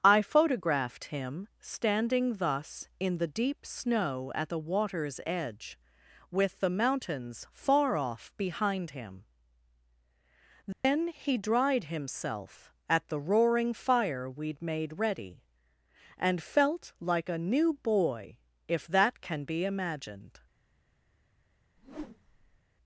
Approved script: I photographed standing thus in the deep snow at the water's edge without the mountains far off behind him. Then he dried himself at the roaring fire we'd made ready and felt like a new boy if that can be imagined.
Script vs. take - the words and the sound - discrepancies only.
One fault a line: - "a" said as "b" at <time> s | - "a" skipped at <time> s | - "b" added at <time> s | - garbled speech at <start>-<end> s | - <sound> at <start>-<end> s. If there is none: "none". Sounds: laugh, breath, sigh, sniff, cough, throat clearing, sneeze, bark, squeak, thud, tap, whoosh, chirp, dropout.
- "him" added at 1.1 s
- "without" said as "with" at 6.3 s
- dropout at 10.7-10.8 s
- whoosh at 21.8-22.6 s